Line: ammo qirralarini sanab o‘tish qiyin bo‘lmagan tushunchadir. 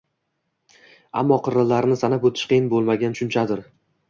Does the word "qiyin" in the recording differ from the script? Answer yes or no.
no